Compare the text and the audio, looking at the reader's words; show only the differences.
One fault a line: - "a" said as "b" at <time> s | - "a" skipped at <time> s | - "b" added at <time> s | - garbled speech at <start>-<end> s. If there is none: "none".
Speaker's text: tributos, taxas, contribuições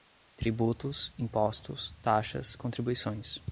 - "impostos" added at 1.2 s